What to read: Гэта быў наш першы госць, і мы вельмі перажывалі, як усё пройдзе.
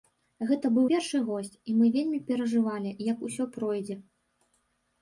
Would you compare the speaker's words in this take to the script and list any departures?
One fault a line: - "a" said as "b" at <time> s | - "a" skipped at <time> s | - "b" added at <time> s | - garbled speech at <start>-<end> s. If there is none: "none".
- "наш" skipped at 0.8 s